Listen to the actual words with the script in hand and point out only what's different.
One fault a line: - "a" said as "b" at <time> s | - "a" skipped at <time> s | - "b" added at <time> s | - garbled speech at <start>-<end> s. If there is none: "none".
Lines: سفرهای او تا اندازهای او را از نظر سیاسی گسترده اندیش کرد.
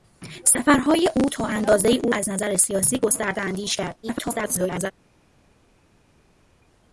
- "را" skipped at 2.1 s
- garbled speech at 4.0-4.9 s